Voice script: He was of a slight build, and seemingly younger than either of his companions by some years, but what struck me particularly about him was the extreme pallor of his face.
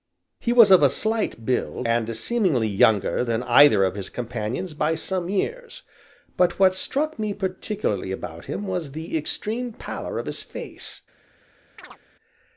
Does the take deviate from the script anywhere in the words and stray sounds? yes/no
yes